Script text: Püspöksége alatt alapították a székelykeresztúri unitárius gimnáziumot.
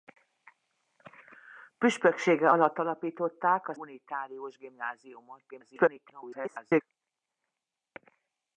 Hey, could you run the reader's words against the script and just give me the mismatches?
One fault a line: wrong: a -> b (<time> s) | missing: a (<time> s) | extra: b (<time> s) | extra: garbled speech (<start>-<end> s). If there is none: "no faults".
missing: székelykeresztúri (3.7 s)
extra: garbled speech (5.5-6.8 s)